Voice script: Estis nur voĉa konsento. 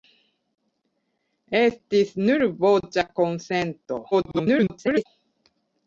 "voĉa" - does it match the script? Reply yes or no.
yes